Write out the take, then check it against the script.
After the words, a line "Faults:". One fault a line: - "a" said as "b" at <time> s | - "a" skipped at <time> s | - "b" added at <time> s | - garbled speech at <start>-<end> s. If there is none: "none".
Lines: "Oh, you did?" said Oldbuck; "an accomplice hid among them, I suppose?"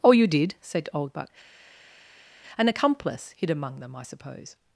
"Oh, you did?" said Oldbuck; "an accomplice hid among them, I suppose?"
Faults:
none